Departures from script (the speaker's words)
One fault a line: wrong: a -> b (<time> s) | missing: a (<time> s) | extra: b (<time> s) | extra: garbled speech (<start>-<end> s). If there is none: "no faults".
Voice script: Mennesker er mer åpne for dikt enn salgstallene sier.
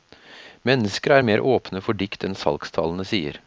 no faults